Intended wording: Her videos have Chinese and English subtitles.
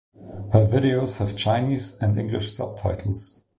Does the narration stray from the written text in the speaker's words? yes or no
no